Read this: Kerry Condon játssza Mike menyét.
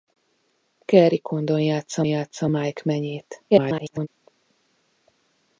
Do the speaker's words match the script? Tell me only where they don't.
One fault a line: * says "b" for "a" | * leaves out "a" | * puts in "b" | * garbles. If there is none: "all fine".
* puts in "játssza"
* garbles